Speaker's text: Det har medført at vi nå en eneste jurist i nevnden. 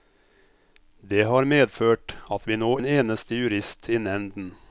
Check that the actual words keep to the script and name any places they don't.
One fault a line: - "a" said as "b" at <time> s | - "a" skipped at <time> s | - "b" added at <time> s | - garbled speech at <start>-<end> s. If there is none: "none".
none